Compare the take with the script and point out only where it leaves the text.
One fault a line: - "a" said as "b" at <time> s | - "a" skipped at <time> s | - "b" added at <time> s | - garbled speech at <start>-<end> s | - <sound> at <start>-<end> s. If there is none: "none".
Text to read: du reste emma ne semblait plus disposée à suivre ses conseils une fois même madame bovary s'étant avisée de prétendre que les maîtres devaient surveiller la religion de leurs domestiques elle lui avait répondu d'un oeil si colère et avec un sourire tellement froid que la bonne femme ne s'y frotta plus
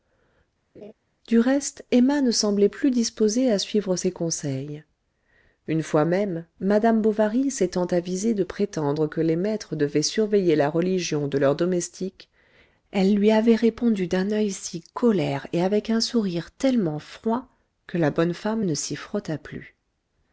- laugh at 0.7-0.9 s